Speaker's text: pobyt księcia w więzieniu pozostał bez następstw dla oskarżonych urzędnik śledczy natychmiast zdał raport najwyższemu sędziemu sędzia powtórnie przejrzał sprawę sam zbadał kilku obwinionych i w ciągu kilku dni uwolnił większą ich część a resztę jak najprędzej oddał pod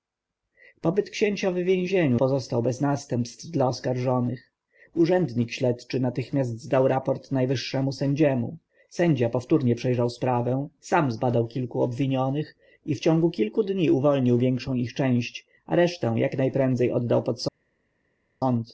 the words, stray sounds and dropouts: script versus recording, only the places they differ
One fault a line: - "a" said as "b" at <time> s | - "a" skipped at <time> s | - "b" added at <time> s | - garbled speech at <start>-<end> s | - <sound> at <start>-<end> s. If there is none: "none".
none